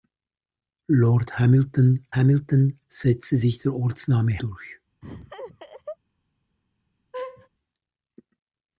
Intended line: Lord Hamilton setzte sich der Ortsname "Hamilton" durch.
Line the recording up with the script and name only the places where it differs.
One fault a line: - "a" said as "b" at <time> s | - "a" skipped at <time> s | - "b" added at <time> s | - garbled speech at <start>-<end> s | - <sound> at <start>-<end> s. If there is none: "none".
- "Hamilton" added at 2.1 s
- "Hamilton" skipped at 4.4 s
- laugh at 5.0-6.0 s
- laugh at 7.1-7.5 s